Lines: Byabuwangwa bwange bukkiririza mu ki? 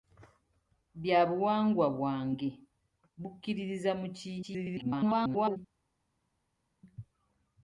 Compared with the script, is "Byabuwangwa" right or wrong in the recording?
right